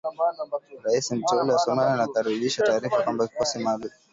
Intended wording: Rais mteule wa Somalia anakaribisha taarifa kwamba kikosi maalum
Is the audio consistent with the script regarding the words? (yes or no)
yes